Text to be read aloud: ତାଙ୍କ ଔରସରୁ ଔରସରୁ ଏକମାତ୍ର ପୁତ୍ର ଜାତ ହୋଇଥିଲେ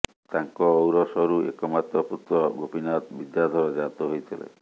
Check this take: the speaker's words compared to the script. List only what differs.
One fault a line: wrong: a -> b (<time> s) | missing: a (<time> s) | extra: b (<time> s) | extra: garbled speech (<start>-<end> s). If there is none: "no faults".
missing: ଔରସରୁ (1.4 s)
extra: ଗୋପୀନାଥ ବିଦ୍ୟାଧର (2.6 s)